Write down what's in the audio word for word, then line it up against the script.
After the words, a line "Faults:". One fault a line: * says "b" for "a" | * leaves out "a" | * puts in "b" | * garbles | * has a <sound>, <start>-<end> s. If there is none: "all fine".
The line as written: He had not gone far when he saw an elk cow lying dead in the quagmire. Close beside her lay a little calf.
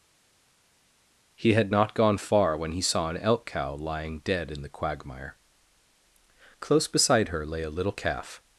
He had not gone far when he saw an elk cow lying dead in the quagmire. Close beside her lay a little calf.
Faults:
all fine